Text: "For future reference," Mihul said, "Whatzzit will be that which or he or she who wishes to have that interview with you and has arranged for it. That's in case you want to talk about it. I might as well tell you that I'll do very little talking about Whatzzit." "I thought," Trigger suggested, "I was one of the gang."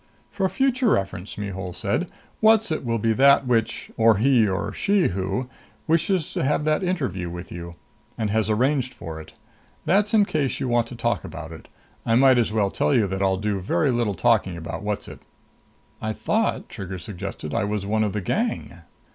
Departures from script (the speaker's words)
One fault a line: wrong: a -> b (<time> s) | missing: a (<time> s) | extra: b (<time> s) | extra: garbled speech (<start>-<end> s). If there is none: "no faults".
no faults